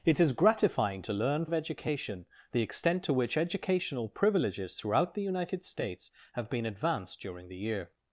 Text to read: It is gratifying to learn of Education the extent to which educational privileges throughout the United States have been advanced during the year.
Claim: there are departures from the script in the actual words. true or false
false